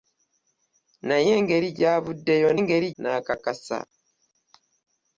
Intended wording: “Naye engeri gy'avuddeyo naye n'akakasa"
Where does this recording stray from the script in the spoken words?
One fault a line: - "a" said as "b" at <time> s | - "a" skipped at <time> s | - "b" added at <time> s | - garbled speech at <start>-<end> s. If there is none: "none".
- "naye" said as "engeri" at 2.6 s